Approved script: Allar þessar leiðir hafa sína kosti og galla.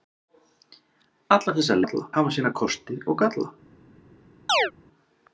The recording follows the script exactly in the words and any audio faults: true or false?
false